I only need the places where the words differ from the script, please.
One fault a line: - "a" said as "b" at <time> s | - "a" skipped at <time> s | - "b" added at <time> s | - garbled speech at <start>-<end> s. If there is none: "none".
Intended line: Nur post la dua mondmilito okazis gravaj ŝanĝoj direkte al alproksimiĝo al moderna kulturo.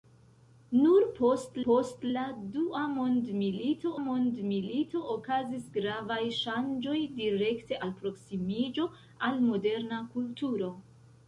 - "post" added at 1.6 s
- "mondmilito" added at 4.0 s
- "al" skipped at 7.8 s